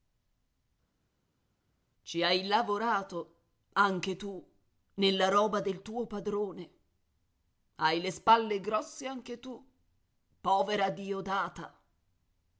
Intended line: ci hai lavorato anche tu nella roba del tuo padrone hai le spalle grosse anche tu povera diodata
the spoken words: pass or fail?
pass